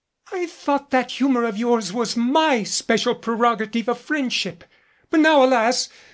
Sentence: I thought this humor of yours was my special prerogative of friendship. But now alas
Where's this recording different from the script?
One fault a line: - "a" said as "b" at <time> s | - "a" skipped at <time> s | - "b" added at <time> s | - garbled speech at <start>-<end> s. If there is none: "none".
- "this" said as "that" at 0.9 s